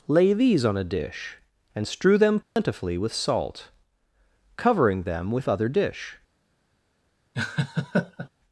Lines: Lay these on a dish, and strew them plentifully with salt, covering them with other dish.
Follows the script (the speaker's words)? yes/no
yes